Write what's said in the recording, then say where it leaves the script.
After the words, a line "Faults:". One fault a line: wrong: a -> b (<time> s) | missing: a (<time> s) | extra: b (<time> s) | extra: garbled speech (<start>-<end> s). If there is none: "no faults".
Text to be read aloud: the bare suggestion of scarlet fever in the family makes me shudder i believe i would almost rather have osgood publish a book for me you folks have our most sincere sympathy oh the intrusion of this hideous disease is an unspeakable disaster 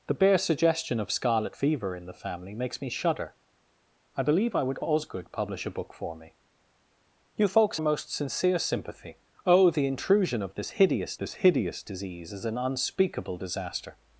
the bare suggestion of scarlet fever in the family makes me shudder i believe i would osgood publish a book for me you folks most sincere sympathy oh the intrusion of this hideous this hideous disease is an unspeakable disaster
Faults:
missing: almost rather have (4.8 s)
missing: have our (7.8 s)
extra: this hideous (11.2 s)